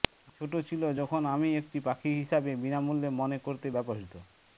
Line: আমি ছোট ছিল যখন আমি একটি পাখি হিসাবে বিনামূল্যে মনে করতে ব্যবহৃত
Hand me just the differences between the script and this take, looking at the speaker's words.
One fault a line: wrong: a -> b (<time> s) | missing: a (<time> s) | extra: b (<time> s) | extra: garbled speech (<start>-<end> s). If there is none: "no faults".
no faults